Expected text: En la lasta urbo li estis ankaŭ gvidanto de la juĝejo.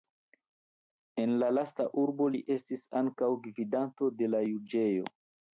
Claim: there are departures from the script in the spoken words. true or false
false